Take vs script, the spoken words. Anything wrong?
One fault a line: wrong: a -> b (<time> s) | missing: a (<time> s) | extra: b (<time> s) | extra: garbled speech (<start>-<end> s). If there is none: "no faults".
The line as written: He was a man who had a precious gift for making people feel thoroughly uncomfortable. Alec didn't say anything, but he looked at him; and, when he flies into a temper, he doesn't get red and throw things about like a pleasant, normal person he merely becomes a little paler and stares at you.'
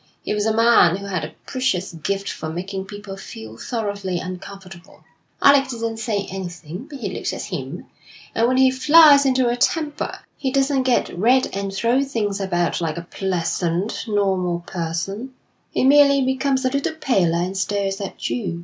no faults